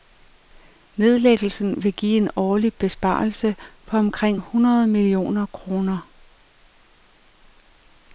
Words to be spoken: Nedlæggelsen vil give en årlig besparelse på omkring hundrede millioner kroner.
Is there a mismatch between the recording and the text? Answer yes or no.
no